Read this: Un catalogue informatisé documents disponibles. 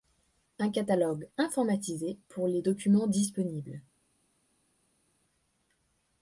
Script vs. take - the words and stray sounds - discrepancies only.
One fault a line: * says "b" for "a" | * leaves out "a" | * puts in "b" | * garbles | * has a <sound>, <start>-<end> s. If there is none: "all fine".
* puts in "pour les"